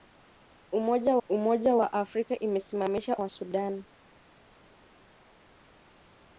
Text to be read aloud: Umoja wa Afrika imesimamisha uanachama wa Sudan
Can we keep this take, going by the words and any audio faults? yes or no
no